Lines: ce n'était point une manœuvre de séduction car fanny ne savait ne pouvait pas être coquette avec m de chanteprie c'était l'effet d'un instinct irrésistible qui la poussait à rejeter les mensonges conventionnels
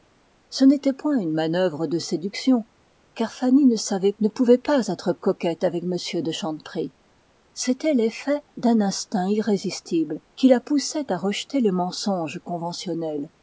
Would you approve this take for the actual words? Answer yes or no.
yes